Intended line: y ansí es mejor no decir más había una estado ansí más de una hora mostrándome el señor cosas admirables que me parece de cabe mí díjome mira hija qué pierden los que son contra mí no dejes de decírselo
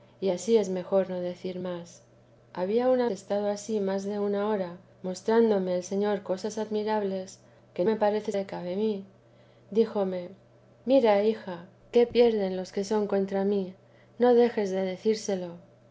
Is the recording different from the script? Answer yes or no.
no